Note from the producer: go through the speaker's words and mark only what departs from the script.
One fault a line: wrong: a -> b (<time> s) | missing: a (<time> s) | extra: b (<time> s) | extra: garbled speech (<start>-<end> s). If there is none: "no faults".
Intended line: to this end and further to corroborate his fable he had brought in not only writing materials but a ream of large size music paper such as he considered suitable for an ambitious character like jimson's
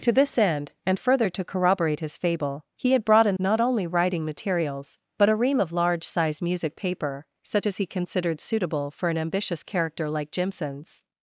no faults